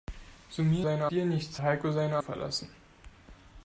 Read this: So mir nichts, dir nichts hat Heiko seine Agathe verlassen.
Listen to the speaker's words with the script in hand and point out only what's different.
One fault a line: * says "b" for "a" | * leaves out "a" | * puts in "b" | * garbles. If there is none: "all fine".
* says "seine" for "nichts"
* leaves out "hat"
* leaves out "Agathe"